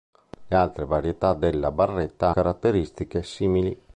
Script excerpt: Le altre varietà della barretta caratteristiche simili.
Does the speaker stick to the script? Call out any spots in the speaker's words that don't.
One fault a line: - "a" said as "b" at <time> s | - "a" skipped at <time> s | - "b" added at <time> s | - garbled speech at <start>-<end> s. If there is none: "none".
none